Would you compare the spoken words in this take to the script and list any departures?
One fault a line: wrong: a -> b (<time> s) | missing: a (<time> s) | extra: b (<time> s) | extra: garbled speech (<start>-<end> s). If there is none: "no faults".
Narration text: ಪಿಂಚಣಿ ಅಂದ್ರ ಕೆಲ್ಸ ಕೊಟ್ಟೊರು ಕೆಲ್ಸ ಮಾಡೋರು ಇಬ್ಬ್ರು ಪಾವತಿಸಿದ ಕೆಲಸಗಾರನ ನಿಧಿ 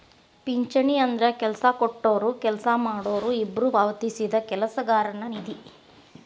no faults